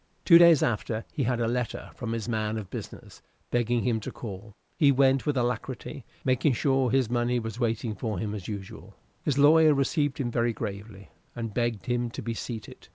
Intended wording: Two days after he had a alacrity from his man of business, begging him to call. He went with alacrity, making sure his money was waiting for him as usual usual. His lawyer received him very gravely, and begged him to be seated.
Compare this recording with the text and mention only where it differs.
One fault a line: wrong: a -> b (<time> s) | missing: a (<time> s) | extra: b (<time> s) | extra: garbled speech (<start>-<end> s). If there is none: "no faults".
wrong: alacrity -> letter (1.5 s)
missing: usual (8.9 s)